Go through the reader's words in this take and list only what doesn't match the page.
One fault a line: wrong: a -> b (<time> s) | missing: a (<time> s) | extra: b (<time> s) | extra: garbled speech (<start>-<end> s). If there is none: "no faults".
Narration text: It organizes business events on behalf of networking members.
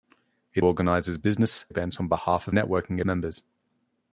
no faults